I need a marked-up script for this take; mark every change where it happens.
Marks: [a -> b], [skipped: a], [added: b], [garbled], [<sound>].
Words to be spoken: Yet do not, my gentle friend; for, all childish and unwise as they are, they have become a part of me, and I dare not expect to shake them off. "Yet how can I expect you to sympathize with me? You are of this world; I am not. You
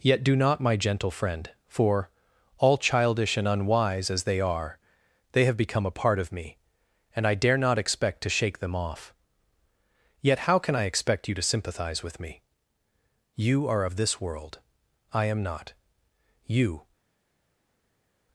Yet do not, my gentle friend; for, all childish and unwise as they are, they have become a part of me, and I dare not expect to shake them off. "Yet how can I expect you to sympathize with me? You are of this world; I am not. You